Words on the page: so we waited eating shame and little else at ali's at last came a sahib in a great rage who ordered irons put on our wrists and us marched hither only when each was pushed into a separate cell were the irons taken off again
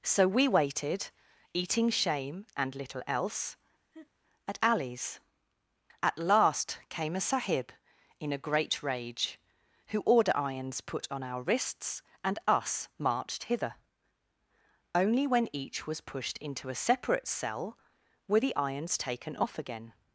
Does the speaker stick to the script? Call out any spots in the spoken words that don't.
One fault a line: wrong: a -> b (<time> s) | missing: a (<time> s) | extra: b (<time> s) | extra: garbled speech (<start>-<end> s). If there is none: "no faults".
wrong: ordered -> order (10.0 s)